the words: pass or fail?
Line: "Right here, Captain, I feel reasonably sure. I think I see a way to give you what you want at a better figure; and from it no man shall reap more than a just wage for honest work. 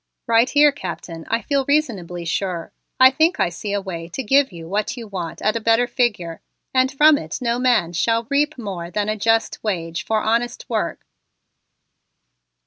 pass